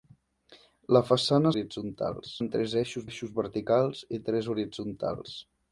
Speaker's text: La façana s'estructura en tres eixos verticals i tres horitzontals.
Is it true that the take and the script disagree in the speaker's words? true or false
true